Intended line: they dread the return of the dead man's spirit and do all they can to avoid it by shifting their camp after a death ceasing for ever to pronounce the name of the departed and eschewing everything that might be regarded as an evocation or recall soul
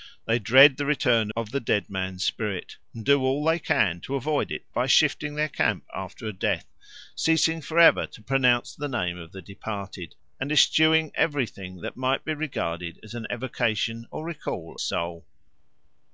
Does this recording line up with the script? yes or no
yes